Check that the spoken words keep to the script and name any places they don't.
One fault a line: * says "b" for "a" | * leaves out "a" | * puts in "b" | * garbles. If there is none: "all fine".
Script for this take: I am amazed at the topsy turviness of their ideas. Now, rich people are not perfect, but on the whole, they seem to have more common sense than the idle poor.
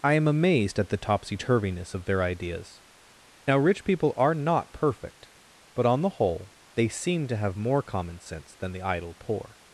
all fine